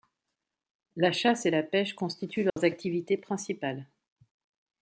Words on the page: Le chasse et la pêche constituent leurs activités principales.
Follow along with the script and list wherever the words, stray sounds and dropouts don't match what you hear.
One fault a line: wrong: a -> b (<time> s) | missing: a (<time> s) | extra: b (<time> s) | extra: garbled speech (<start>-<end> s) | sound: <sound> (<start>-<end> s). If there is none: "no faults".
wrong: Le -> La (0.9 s)
sound: dropout (2.5-2.6 s)